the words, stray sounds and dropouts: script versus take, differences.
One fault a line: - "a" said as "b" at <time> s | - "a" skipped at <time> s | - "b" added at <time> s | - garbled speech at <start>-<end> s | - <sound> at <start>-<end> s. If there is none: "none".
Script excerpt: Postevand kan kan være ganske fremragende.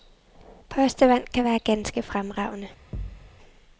- "kan" skipped at 1.4 s
- thud at 2.9-3.3 s